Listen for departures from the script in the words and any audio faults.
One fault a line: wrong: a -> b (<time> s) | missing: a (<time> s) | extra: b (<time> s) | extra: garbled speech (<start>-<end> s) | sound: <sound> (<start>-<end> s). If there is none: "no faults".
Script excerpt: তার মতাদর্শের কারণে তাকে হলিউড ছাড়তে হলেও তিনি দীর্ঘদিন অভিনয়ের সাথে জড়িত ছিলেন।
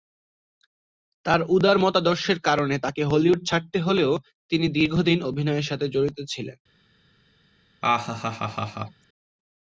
extra: উদার (1.5 s)
sound: laugh (7.8-9.0 s)